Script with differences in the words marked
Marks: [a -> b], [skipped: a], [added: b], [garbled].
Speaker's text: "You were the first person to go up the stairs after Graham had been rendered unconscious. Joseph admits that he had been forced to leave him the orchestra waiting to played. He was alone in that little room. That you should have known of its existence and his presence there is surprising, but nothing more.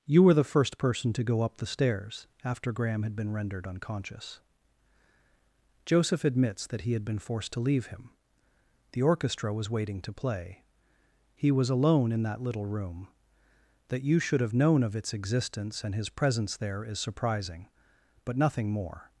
"You were the first person to go up the stairs after Graham had been rendered unconscious. Joseph admits that he had been forced to leave him the orchestra [added: was] waiting to [played. -> play] He was alone in that little room. That you should have known of its existence and his presence there is surprising, but nothing more.